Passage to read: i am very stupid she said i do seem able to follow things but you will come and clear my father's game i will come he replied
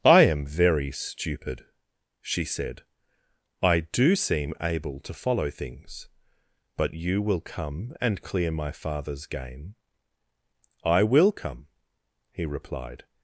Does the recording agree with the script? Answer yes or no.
yes